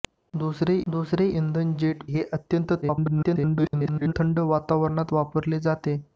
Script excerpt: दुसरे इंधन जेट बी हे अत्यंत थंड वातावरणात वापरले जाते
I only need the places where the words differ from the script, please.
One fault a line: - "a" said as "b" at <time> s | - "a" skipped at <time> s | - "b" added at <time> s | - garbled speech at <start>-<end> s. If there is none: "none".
- "दुसरे" added at 0.9 s
- "बी" skipped at 2.0 s
- garbled speech at 2.8-4.1 s